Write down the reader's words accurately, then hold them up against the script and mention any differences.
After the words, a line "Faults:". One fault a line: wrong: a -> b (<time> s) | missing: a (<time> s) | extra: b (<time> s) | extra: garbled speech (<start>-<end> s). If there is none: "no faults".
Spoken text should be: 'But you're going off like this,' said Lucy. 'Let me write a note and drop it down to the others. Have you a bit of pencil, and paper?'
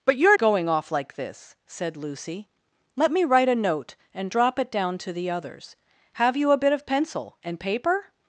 'But you're going off like this,' said Lucy. 'Let me write a note and drop it down to the others. Have you a bit of pencil, and paper?'
Faults:
no faults